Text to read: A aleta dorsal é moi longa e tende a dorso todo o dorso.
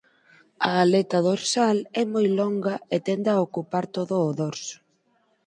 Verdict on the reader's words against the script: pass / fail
fail